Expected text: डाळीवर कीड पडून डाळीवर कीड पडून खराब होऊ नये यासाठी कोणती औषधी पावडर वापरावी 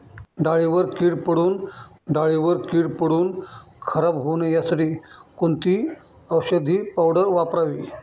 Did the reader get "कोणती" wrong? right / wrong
right